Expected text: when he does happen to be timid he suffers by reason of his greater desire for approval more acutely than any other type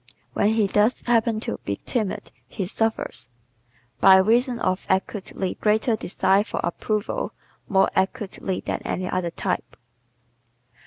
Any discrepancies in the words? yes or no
yes